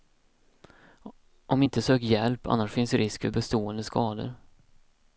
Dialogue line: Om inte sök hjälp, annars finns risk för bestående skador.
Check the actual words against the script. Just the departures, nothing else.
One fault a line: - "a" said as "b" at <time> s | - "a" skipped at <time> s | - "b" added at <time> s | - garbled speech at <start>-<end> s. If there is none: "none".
none